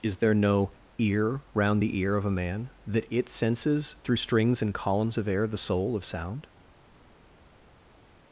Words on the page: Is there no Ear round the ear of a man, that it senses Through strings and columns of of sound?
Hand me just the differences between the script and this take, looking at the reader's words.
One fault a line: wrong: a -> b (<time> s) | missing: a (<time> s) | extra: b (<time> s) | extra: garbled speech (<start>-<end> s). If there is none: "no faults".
extra: air the soul (5.3 s)